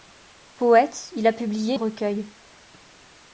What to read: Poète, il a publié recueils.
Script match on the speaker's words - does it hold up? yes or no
yes